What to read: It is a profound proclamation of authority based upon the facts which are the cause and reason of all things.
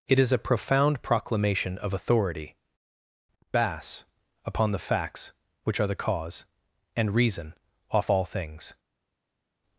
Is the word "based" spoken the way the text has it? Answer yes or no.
no